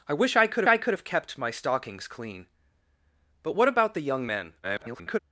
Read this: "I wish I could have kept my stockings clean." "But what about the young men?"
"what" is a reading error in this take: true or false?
false